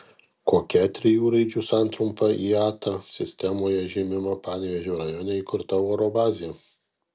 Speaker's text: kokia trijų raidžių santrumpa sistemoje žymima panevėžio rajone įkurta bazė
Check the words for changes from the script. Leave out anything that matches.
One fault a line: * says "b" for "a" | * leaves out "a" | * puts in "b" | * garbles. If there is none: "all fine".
* puts in "iata"
* puts in "oro"